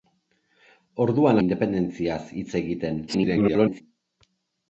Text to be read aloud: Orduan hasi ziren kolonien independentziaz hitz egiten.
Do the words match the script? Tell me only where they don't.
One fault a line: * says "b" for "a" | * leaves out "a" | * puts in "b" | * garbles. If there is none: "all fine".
* leaves out "hasi ziren kolonien"
* garbles